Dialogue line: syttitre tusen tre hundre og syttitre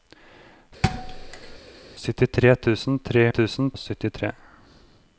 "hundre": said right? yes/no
no